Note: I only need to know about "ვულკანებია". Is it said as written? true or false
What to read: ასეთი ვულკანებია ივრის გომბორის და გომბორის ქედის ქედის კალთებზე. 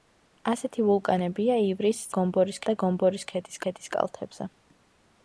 true